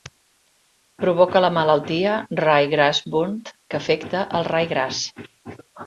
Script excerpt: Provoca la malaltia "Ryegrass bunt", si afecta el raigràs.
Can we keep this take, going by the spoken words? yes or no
no